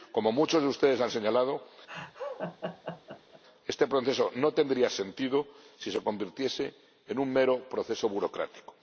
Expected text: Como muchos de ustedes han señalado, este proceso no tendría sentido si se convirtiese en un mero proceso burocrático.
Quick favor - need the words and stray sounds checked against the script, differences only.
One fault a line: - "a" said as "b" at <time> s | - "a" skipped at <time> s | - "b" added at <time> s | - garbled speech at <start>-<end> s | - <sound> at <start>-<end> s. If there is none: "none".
- laugh at 1.9-3.4 s